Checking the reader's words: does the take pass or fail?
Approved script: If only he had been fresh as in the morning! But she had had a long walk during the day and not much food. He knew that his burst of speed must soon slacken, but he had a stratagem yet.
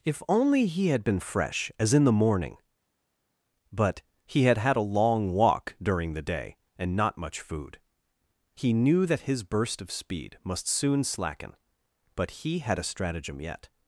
fail